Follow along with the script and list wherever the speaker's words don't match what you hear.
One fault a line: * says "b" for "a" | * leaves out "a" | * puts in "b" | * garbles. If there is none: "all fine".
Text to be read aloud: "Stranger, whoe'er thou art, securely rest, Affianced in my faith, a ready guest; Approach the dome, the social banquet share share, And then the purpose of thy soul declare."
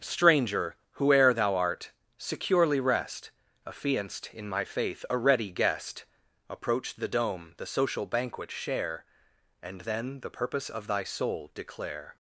* leaves out "share"